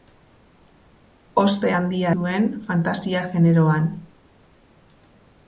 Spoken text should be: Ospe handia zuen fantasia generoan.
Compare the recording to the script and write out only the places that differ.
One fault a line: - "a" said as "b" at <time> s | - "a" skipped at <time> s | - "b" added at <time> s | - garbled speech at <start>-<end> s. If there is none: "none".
none